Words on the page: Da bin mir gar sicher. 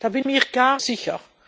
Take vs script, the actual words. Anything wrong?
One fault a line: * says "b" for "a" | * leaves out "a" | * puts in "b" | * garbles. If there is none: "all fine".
all fine